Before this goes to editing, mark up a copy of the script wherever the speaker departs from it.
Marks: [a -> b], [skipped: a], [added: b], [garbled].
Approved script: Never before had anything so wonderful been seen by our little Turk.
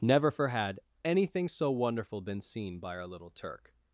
Never [before -> for] had anything so wonderful been seen by our little Turk.